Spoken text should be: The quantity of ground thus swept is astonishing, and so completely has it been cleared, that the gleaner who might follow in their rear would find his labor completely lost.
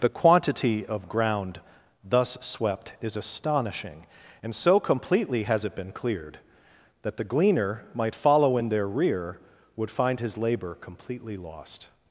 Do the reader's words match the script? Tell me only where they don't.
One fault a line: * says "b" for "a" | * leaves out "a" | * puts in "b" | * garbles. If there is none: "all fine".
* leaves out "who"